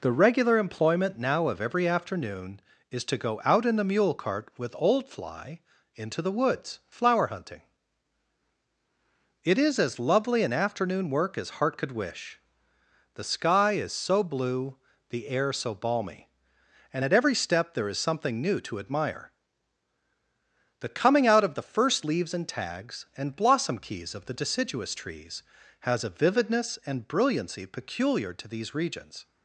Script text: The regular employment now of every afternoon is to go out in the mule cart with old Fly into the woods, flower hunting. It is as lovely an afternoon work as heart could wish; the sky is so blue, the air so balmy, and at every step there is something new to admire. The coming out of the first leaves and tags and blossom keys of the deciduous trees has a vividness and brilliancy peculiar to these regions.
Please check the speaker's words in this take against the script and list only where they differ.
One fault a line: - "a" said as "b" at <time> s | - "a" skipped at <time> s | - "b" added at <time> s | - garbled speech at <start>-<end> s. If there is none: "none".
none